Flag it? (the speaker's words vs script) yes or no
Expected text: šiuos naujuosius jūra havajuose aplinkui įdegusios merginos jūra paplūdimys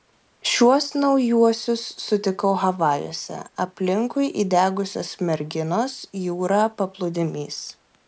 yes